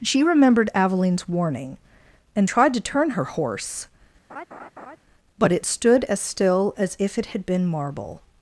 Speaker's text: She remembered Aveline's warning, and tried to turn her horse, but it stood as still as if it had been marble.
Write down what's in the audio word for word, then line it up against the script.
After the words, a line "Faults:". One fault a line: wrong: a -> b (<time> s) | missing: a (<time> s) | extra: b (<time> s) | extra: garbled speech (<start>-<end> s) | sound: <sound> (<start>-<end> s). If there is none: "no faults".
She remembered Aveline's warning, and tried to turn her horse, but it stood as still as if it had been marble.
Faults:
sound: laugh (4.3-5.0 s)